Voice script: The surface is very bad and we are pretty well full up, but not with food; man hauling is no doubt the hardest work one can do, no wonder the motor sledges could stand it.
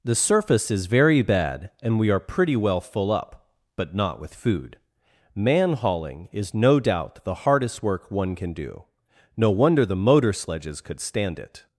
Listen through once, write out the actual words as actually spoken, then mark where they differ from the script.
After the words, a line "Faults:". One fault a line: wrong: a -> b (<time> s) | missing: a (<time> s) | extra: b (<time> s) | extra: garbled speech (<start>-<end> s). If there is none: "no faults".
The surface is very bad and we are pretty well full up, but not with food; man hauling is no doubt the hardest work one can do, no wonder the motor sledges could stand it.
Faults:
no faults